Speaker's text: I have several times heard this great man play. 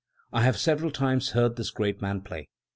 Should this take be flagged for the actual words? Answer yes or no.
no